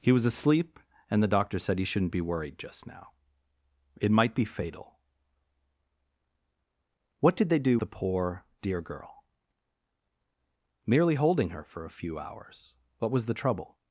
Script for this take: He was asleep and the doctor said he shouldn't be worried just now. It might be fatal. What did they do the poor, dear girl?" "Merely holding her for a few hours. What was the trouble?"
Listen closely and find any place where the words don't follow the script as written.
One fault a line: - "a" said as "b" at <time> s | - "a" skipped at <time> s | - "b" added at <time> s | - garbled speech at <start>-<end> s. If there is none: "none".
none